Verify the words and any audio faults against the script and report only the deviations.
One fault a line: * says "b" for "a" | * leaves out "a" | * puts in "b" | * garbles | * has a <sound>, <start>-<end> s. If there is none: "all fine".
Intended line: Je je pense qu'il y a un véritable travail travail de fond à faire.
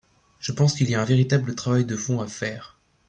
* leaves out "je"
* leaves out "travail"